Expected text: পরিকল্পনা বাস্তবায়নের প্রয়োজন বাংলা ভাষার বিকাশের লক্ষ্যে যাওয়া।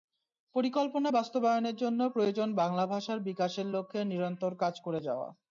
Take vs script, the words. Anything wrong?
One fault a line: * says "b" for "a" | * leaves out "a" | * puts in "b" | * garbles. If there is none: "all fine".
* puts in "জন্য"
* puts in "নিরন্তর কাজ করে"